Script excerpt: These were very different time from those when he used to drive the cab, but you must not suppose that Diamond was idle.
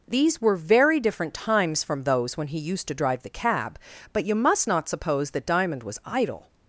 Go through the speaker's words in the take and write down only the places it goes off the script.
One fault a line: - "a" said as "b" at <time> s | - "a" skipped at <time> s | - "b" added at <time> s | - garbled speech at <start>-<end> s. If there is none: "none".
- "time" said as "times" at 1.3 s